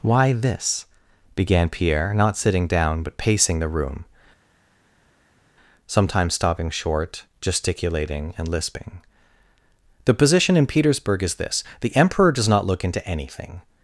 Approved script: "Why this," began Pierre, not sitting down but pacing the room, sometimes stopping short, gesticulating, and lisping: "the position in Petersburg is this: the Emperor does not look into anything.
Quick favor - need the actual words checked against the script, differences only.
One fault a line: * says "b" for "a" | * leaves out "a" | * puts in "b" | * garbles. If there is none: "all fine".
all fine